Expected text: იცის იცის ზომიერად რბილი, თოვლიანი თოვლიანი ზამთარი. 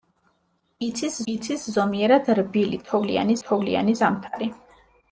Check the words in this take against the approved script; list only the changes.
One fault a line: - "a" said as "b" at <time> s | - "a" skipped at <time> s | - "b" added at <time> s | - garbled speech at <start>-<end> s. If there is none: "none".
none